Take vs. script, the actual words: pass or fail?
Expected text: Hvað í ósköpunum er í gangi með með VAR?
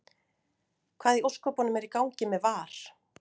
fail